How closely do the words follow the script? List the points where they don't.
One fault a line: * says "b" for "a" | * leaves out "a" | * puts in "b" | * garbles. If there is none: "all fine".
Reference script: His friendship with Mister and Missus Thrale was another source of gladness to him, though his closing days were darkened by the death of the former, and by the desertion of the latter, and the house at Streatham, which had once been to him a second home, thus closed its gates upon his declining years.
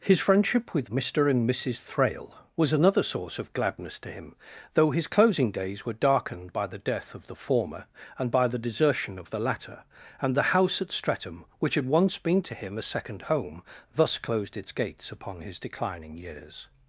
all fine